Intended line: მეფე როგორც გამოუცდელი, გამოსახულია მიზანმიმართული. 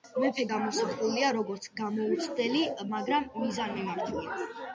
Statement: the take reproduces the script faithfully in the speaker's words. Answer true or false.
false